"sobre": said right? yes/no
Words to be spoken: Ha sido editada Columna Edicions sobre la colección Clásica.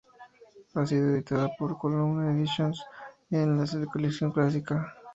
no